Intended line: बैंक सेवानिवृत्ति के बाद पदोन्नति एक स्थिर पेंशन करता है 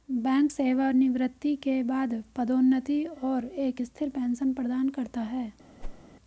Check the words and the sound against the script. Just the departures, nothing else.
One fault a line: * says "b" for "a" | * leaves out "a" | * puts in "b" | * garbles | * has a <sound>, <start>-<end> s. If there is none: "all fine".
* puts in "और"
* puts in "प्रदान"
* has a whoosh, 5.8-6.0 s